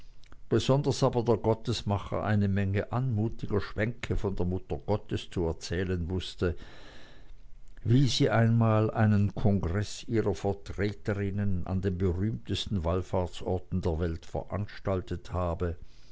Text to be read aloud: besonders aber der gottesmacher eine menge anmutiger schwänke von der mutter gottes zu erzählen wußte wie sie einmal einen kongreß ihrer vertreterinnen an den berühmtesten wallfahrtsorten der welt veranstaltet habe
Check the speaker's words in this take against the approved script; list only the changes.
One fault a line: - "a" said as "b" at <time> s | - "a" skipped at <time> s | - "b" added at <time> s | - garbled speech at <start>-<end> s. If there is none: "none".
none